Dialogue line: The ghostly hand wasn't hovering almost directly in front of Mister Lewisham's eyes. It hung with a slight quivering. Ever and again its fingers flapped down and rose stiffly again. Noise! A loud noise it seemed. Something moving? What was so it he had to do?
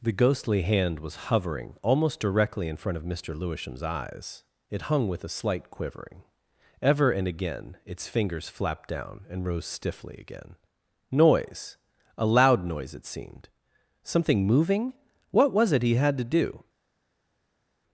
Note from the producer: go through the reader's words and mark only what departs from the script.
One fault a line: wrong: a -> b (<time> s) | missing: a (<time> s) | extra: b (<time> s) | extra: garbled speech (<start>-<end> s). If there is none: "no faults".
wrong: wasn't -> was (1.0 s)
missing: so (15.7 s)